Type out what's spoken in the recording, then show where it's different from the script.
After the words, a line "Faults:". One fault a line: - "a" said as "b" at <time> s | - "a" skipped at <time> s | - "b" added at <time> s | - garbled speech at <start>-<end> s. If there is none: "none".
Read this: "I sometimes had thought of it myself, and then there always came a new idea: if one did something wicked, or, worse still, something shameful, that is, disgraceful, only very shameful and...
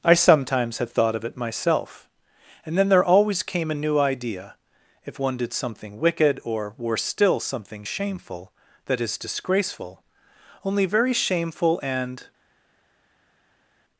"I sometimes had thought of it myself, and then there always came a new idea: if one did something wicked, or, worse still, something shameful, that is, disgraceful, only very shameful and...
Faults:
none